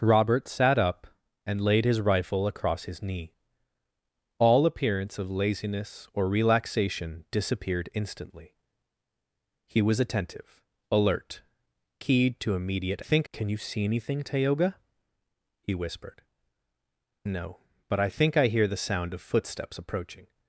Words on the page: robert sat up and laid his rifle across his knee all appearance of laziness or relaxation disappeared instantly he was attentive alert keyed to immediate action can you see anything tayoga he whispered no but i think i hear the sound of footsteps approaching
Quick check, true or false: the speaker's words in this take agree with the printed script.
false